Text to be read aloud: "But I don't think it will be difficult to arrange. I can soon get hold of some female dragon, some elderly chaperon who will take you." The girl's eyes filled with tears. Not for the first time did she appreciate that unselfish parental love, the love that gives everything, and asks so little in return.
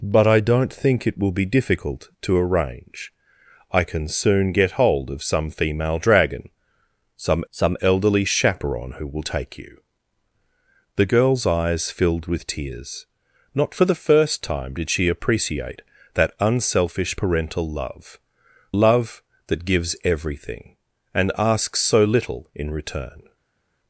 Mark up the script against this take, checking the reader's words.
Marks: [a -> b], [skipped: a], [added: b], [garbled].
"But I don't think it will be difficult to arrange. I can soon get hold of some female dragon, some [added: some] elderly chaperon who will take you." The girl's eyes filled with tears. Not for the first time did she appreciate that unselfish parental love, [skipped: the] love that gives everything, and asks so little in return.